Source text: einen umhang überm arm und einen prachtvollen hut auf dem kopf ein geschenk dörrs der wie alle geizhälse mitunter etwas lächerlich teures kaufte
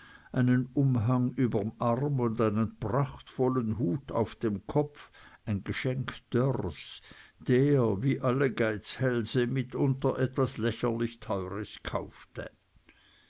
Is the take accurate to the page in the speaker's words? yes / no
yes